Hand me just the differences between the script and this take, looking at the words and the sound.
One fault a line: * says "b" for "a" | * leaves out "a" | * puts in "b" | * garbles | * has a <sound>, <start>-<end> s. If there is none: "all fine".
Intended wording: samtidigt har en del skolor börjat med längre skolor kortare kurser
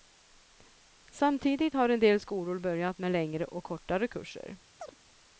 * says "och" for "skolor"
* has a chirp, 4.8-5.0 s